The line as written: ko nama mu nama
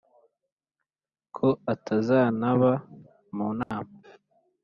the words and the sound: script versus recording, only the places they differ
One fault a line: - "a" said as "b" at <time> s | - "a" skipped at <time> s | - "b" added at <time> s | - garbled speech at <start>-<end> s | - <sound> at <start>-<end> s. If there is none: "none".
- "nama" said as "atazantaba" at 1.7 s
- dropout at 3.6-3.7 s